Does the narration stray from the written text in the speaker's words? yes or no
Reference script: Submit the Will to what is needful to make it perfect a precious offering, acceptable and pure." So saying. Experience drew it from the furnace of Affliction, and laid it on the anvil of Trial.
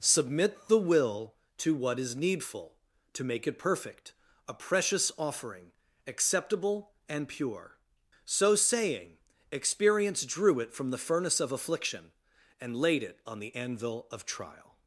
no